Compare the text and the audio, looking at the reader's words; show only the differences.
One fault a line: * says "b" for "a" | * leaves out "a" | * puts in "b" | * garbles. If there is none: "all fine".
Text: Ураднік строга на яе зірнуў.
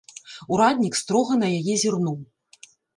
all fine